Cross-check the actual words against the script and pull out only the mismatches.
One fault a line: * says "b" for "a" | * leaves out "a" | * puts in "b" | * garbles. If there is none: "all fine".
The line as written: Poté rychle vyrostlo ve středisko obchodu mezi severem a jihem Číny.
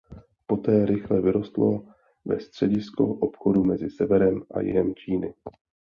all fine